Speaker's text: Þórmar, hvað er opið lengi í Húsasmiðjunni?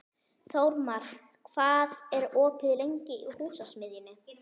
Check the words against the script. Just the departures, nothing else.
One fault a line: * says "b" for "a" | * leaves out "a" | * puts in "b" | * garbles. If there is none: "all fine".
all fine